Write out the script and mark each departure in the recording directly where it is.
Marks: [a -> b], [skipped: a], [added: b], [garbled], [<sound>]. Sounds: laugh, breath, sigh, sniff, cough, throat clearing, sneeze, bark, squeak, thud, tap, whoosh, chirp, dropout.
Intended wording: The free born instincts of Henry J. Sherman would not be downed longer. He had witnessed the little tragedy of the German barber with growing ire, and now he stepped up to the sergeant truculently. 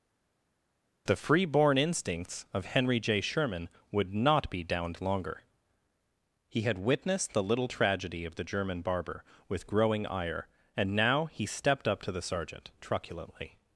The free born instincts of Henry J. Sherman would not be downed longer. He had witnessed the little tragedy of the German barber with growing ire, and now he stepped up to the sergeant truculently.